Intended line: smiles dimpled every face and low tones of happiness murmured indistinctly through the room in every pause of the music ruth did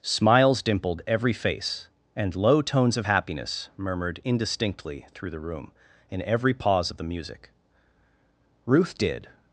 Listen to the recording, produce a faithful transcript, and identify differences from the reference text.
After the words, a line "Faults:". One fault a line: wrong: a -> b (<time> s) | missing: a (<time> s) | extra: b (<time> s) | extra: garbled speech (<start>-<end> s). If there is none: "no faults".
smiles dimpled every face and low tones of happiness murmured indistinctly through the room in every pause of the music ruth did
Faults:
no faults